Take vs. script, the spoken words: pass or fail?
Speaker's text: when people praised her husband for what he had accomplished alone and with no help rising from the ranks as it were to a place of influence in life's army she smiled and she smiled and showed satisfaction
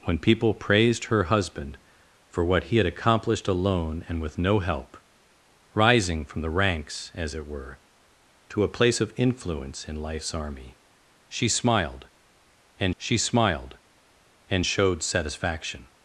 pass